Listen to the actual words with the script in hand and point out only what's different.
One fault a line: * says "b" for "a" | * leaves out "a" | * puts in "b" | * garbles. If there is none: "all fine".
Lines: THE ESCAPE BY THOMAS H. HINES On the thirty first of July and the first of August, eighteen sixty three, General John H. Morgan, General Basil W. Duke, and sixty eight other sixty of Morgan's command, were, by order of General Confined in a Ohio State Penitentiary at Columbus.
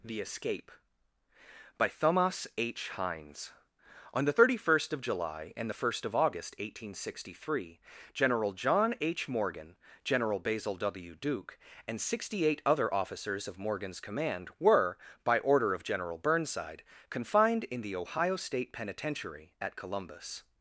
* says "officers" for "sixty"
* puts in "Burnside"
* says "the" for "a"